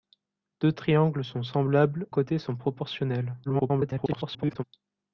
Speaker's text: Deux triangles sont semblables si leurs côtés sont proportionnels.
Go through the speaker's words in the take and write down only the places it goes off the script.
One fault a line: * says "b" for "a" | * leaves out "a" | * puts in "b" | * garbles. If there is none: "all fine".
* leaves out "si leurs"
* garbles